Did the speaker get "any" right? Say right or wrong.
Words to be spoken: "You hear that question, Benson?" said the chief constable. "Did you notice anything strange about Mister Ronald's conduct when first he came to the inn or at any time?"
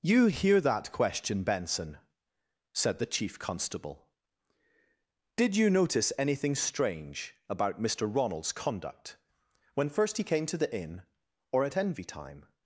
wrong